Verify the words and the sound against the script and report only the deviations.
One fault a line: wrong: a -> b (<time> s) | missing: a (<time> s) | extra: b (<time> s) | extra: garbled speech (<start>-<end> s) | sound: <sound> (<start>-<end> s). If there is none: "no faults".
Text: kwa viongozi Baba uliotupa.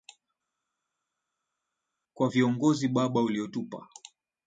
no faults